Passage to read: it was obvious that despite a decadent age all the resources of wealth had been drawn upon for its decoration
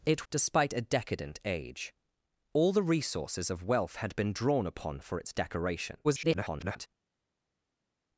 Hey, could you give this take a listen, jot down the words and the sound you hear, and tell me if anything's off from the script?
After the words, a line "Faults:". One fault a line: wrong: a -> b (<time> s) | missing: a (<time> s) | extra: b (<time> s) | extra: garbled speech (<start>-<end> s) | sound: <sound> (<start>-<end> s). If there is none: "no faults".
it despite a decadent age all the resources of wealth had been drawn upon for its decoration [garbled]
Faults:
missing: was obvious that (0.2 s)
extra: garbled speech (6.0-6.9 s)